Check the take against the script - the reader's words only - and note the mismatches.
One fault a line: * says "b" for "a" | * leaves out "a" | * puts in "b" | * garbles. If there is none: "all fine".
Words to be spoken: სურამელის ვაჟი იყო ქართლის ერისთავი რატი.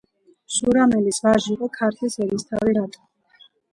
all fine